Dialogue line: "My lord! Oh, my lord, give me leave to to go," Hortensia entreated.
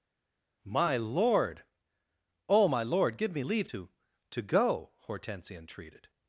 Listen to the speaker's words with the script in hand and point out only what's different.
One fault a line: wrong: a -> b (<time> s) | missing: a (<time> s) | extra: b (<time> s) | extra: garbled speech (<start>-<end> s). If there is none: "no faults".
no faults